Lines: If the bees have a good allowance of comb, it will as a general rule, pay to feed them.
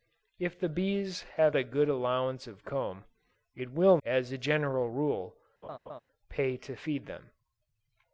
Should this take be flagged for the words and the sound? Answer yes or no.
yes